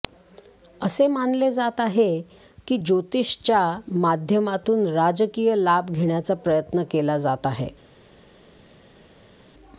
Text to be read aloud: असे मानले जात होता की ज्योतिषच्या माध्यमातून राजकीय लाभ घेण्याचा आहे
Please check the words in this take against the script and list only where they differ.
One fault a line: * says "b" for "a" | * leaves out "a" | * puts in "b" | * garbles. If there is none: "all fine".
* says "आहे" for "होता"
* puts in "प्रयत्न केला जात"